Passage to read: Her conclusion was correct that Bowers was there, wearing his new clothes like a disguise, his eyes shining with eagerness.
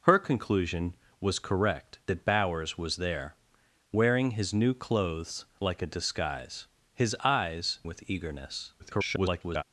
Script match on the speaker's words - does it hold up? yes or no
no